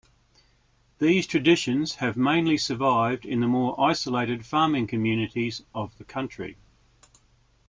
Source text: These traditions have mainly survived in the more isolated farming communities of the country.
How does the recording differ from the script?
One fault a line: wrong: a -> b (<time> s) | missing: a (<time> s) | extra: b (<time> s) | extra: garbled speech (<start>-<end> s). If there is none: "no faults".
no faults